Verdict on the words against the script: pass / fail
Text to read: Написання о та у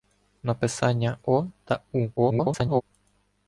fail